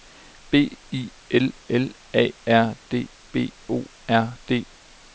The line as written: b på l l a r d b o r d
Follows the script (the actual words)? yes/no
no